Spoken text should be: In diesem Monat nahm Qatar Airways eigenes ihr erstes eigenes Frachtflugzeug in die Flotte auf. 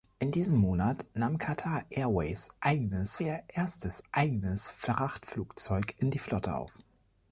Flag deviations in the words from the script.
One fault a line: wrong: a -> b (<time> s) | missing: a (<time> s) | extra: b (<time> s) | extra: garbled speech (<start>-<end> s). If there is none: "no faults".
no faults